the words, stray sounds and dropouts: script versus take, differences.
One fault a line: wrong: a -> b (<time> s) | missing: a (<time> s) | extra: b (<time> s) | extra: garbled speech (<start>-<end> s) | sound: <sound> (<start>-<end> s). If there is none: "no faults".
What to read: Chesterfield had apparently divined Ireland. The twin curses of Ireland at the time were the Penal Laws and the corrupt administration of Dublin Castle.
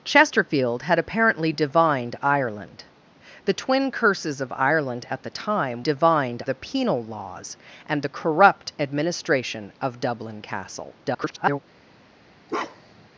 wrong: were -> divined (5.8 s)
extra: garbled speech (11.0-11.6 s)
sound: bark (12.5-13.1 s)